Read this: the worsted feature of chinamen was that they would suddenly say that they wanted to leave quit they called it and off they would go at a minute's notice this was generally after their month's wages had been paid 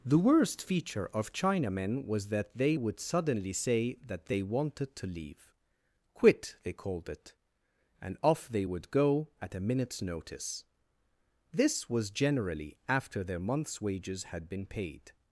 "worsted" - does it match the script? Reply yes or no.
no